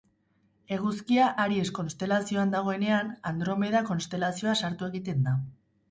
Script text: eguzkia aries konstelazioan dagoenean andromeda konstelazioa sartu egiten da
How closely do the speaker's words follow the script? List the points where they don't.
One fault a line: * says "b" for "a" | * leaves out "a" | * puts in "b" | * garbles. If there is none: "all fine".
all fine